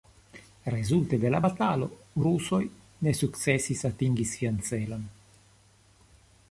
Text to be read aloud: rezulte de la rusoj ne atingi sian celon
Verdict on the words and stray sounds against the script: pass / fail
fail